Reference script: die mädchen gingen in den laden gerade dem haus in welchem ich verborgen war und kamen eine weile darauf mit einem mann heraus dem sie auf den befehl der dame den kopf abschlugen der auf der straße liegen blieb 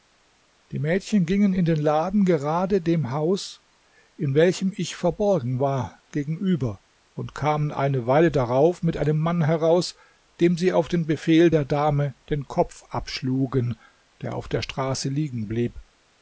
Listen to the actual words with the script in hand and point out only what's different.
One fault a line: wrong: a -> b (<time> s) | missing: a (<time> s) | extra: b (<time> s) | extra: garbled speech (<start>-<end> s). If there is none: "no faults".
extra: gegenüber (6.1 s)